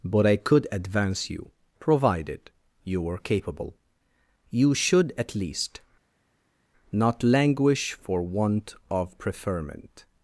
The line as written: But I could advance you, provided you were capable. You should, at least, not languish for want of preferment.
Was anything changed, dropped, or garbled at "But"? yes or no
no